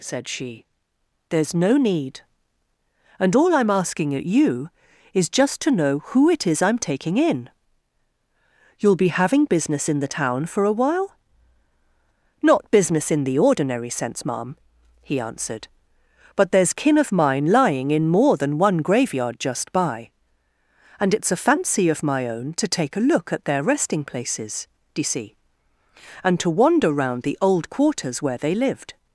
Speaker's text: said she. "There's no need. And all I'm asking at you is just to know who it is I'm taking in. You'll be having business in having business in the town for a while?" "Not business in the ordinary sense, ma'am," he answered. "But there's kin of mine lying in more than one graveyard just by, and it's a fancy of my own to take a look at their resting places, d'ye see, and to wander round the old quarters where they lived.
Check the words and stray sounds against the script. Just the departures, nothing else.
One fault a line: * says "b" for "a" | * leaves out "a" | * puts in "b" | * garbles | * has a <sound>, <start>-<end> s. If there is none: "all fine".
* leaves out "having business in"